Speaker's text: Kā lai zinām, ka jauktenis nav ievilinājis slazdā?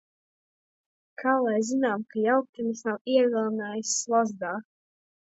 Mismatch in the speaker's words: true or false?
false